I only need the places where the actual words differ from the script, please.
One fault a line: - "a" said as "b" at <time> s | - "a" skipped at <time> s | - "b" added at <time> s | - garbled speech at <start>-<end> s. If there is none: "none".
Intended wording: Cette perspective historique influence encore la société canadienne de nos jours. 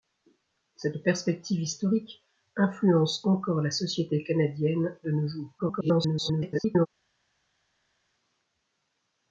- garbled speech at 5.6-6.9 s